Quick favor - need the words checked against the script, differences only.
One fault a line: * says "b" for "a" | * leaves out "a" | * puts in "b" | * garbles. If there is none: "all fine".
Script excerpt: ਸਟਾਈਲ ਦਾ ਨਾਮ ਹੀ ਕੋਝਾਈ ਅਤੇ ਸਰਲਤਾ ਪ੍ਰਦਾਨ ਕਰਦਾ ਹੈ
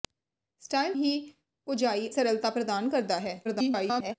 * leaves out "ਦਾ ਨਾਮ"
* leaves out "ਅਤੇ"
* garbles